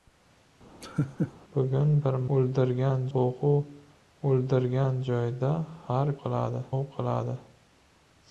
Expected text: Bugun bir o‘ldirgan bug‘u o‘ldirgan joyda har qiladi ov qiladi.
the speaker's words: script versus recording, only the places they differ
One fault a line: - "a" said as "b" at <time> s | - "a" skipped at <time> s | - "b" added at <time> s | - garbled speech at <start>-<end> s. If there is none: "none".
none